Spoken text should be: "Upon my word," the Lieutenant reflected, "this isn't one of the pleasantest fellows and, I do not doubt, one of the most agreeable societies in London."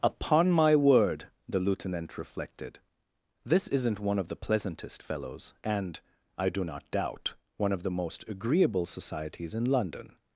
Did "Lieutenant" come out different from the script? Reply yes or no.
no